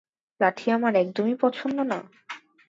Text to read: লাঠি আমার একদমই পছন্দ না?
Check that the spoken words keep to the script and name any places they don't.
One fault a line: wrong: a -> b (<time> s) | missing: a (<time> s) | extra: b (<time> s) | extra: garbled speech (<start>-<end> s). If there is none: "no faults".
no faults